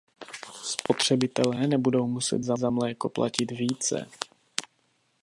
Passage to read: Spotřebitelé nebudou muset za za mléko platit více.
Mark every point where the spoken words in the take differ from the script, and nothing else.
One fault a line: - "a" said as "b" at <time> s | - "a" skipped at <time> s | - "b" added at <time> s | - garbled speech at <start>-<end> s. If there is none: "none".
none